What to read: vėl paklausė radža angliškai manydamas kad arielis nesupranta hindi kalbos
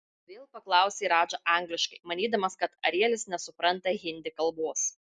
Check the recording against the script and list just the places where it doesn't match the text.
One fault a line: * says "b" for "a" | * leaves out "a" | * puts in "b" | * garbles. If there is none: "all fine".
all fine